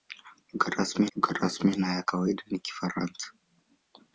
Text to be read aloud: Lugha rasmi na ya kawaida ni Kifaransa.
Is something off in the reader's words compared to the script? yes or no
yes